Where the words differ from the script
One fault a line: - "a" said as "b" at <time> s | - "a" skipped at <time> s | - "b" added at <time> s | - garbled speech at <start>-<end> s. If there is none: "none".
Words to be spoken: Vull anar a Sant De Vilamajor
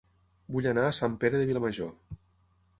- "Pere" added at 1.2 s